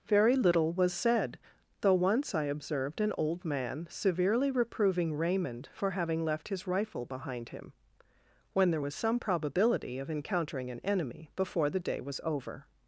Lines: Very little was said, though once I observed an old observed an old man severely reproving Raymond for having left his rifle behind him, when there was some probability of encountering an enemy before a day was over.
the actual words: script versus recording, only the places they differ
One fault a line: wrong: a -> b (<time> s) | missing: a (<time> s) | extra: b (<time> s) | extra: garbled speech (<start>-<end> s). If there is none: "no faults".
missing: observed an old (3.5 s)
wrong: a -> the (11.7 s)